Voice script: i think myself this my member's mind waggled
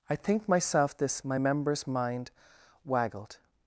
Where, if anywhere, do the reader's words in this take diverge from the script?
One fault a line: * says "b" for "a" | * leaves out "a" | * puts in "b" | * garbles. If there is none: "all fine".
all fine